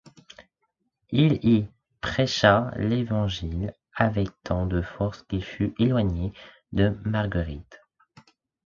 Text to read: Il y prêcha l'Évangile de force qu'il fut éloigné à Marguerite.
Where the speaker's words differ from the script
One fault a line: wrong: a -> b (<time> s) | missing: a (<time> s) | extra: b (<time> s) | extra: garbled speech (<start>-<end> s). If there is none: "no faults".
extra: avec tant (3.9 s)
wrong: à -> de (6.7 s)